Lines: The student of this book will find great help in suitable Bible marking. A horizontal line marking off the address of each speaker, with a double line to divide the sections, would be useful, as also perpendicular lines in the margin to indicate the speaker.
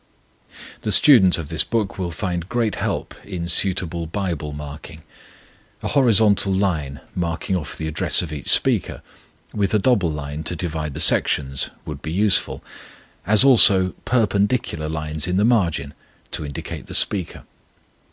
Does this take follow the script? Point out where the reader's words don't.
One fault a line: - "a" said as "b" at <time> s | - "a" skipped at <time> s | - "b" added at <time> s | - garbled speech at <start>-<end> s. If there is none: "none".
none